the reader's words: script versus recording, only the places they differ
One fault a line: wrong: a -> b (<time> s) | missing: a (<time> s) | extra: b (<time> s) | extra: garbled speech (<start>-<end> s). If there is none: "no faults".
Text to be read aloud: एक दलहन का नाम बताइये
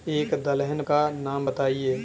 no faults